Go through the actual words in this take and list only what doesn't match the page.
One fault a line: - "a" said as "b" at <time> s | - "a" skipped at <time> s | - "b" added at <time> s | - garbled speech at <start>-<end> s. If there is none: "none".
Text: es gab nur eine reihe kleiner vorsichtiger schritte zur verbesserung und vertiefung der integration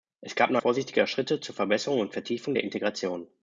- "eine reihe kleiner" skipped at 0.6 s